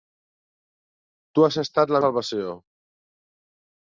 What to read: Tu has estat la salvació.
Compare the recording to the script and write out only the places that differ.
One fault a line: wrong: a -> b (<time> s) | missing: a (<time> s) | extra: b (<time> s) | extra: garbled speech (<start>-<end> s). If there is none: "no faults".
no faults